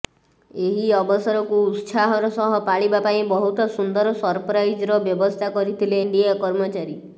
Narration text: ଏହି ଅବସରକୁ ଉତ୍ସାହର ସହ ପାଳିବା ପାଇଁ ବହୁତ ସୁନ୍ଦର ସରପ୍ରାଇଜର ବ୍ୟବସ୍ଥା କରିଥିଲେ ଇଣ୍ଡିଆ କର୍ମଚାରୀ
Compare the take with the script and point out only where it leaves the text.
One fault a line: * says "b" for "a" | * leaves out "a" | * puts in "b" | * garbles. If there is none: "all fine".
all fine